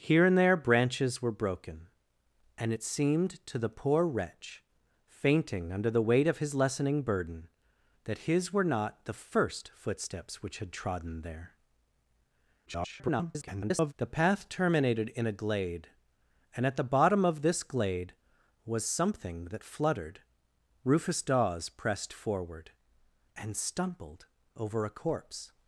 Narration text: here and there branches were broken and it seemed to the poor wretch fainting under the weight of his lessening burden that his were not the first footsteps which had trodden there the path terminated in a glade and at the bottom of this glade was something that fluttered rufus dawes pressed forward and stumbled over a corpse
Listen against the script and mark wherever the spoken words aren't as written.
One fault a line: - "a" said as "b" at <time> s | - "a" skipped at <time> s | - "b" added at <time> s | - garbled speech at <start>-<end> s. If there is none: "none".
- garbled speech at 12.7-13.9 s